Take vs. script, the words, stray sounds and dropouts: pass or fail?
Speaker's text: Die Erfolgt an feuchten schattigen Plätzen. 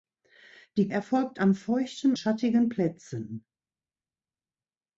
pass